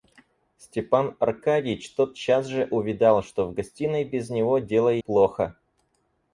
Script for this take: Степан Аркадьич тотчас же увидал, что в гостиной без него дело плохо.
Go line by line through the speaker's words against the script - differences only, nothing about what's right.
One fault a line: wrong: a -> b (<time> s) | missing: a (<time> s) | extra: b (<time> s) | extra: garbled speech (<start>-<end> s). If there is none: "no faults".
no faults